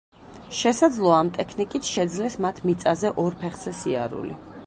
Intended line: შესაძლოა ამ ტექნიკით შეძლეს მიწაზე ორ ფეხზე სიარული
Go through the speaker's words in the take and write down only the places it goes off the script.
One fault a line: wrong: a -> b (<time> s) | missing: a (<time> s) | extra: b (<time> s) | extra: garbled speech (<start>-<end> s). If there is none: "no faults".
extra: მათ (2.5 s)